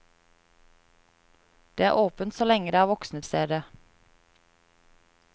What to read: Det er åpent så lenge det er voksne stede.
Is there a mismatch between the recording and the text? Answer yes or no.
no